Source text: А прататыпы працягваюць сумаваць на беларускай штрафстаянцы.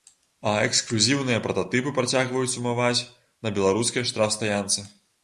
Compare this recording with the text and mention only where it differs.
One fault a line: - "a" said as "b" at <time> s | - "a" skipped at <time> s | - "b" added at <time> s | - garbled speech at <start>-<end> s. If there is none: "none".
- "эксклюзіўныя" added at 0.7 s